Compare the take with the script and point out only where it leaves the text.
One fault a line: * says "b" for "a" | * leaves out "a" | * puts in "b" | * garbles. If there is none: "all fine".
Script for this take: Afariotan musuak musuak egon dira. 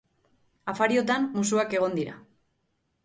* leaves out "musuak"